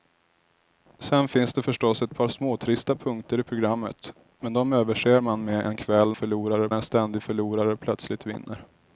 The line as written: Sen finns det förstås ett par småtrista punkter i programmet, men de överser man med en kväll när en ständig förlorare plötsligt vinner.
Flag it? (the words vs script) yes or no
yes